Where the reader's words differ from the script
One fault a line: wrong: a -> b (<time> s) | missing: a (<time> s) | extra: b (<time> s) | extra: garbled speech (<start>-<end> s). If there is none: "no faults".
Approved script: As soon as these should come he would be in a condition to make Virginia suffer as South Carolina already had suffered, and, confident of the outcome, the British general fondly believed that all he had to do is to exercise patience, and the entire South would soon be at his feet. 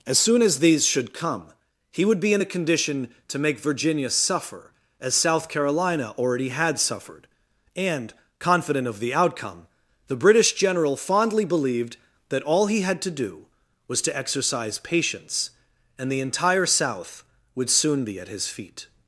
wrong: is -> was (13.9 s)